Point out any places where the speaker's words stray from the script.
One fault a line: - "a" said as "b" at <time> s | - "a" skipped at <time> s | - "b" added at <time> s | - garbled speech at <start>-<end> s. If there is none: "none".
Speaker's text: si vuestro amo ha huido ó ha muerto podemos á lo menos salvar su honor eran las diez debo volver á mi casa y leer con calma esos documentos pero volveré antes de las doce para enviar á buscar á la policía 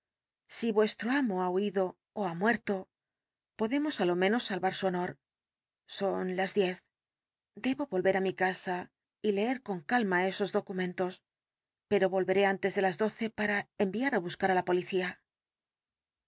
- "eran" said as "son" at 6.0 s